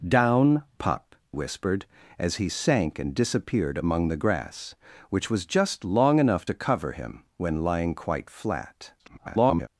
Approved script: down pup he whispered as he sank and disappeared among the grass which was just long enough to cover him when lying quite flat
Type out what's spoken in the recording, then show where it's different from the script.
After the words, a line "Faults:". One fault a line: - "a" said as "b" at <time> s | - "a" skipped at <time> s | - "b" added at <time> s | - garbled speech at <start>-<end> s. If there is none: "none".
down pup whispered as he sank and disappeared among the grass which was just long enough to cover him when lying quite flat [garbled]
Faults:
- "he" skipped at 1.1 s
- garbled speech at 9.0-9.7 s